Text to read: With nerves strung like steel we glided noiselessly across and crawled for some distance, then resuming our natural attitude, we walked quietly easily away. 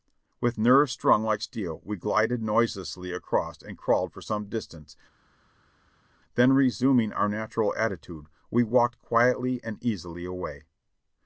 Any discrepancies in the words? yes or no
yes